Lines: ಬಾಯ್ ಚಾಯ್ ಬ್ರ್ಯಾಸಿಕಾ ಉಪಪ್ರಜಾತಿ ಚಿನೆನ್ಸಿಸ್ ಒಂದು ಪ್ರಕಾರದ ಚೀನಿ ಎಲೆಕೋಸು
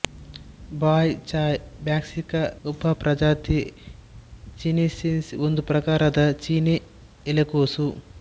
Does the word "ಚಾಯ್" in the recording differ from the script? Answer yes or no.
no